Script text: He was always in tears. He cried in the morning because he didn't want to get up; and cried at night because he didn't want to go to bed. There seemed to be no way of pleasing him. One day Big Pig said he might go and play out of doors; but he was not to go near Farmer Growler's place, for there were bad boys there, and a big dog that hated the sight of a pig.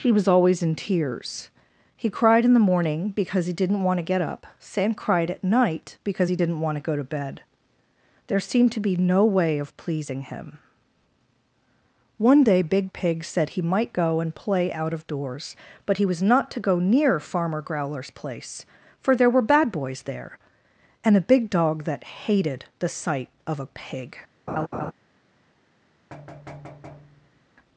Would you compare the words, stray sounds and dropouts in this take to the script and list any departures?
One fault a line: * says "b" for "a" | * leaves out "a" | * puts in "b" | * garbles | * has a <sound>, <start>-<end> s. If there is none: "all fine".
* says "sam" for "and"
* has a laugh, 24.5-24.9 s
* has a thud, 26.1-27.5 s